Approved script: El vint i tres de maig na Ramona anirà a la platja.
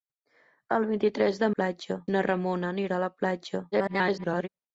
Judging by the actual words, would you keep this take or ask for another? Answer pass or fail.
fail